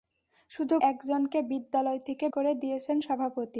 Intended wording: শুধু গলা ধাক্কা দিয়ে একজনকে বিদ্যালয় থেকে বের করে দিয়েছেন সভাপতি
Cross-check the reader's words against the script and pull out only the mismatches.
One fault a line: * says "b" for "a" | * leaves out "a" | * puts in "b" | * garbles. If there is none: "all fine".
* leaves out "গলা ধাক্কা দিয়ে"
* leaves out "বের"